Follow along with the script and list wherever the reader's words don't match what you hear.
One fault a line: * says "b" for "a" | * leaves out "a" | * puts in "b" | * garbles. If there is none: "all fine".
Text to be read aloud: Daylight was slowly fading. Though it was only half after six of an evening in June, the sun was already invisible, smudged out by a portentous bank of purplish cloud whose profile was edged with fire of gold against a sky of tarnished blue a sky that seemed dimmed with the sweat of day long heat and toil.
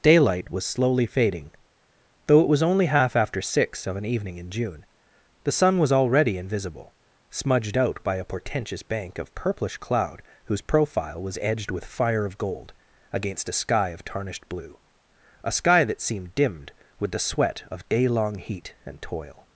all fine